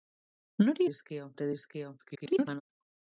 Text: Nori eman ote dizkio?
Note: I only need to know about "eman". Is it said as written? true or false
false